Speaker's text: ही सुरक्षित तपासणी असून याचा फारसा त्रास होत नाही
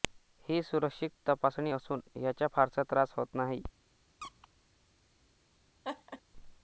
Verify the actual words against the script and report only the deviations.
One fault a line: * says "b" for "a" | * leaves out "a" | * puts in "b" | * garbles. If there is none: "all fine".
all fine